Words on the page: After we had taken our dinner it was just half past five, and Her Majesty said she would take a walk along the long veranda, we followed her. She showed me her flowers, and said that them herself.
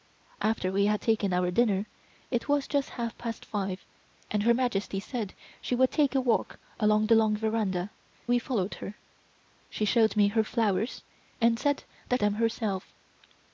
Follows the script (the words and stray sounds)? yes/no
yes